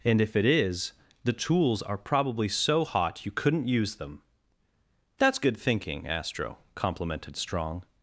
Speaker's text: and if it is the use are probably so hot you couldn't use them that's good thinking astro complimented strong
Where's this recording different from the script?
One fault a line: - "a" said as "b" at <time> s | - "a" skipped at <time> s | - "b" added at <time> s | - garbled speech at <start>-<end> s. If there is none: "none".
- "use" said as "tools" at 1.3 s